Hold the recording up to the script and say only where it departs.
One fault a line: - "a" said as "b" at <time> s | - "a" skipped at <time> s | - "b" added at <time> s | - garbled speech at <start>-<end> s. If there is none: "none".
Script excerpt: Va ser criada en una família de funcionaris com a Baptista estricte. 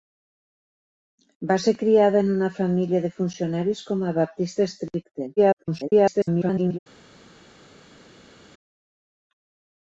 - garbled speech at 5.4-6.8 s